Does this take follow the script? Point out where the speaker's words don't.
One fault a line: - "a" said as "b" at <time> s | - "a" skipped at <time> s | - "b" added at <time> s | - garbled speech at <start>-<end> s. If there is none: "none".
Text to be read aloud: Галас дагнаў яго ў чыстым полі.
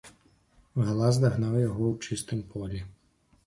none